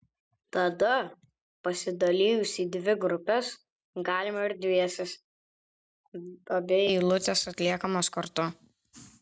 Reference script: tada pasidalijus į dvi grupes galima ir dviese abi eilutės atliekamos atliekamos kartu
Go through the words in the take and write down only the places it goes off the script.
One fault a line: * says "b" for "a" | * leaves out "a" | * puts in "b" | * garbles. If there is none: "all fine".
* leaves out "atliekamos"